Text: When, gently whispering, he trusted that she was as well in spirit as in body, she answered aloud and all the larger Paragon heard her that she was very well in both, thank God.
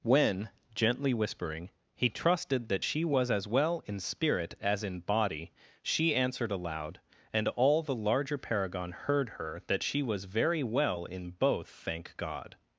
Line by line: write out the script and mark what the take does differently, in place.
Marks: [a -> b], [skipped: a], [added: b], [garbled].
When, gently whispering, he trusted that she was as well in spirit as in body, she answered aloud and all the larger Paragon heard her that she was very well in both, thank God.